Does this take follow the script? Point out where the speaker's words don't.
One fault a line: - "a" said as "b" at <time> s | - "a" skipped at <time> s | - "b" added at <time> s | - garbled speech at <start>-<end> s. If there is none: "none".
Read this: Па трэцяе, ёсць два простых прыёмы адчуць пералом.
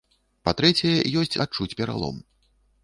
- "два простых прыёмы" skipped at 1.4 s